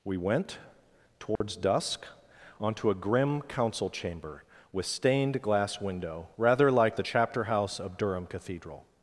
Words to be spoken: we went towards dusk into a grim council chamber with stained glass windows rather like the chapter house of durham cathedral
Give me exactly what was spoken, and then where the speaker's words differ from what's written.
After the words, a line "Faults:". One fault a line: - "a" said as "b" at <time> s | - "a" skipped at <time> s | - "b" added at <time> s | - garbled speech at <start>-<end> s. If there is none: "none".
we went towards dusk onto a grim council chamber with stained glass window rather like the chapter house of durham cathedral
Faults:
- "into" said as "onto" at 2.6 s
- "windows" said as "window" at 5.8 s